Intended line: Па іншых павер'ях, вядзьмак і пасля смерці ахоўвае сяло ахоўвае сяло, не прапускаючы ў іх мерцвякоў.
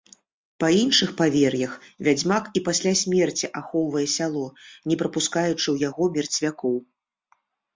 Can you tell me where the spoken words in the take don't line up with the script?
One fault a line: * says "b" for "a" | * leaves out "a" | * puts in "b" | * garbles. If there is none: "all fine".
* leaves out "ахоўвае сяло"
* says "яго" for "іх"